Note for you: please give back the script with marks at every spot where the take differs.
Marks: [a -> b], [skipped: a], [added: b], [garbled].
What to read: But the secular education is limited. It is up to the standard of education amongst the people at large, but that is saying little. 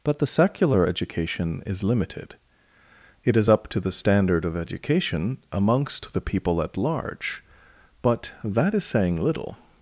But the secular education is limited. It is up to the standard of education amongst the people at large, but that is saying little.